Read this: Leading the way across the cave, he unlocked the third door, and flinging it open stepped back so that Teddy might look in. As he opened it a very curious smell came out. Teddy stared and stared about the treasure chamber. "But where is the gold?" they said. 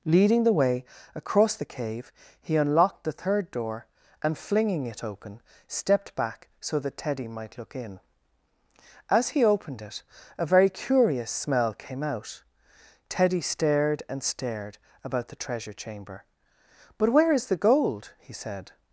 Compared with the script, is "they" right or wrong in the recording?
wrong